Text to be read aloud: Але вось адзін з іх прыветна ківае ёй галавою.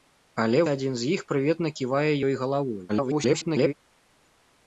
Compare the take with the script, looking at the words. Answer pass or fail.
fail